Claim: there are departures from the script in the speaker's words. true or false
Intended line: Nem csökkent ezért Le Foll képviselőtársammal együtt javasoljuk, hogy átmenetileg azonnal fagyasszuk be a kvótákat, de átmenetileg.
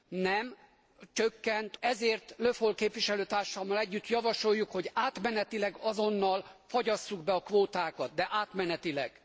false